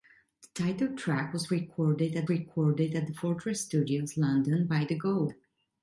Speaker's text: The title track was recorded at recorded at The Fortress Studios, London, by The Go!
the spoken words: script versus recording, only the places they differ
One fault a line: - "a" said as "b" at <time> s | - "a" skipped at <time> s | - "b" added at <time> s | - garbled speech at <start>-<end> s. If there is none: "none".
none